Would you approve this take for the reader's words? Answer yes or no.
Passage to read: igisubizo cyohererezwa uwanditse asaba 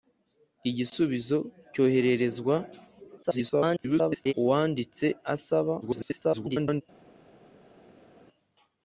no